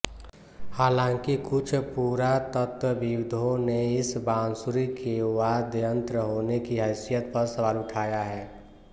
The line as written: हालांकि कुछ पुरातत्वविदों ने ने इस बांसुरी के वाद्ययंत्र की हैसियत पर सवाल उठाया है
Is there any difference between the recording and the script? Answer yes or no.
yes